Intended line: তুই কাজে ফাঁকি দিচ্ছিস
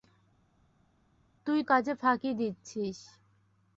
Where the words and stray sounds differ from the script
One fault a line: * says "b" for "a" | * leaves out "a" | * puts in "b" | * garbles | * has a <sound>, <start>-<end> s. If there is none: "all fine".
all fine